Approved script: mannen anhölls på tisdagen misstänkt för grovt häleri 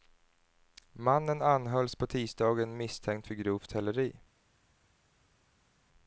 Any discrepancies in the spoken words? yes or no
no